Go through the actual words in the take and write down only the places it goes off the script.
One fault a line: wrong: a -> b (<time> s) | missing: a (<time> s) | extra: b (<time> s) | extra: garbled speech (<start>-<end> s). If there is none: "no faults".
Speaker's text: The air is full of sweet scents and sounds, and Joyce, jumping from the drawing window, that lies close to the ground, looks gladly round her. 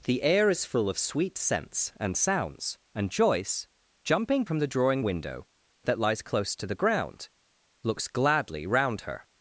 no faults